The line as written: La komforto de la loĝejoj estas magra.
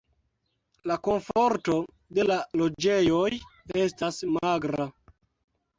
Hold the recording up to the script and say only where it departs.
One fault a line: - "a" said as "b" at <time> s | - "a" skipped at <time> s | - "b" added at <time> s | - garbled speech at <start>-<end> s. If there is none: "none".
none